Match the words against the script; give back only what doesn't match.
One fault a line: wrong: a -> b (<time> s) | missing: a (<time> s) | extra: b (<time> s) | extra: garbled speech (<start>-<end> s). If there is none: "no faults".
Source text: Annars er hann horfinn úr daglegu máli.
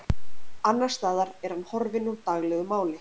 extra: staðar (1.0 s)